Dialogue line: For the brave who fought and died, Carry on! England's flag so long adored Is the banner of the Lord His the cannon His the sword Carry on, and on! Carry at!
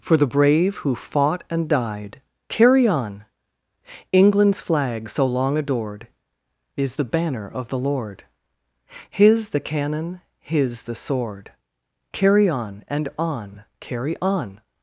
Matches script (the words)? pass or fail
fail